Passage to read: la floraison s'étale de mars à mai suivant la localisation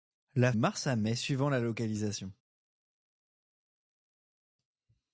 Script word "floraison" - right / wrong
wrong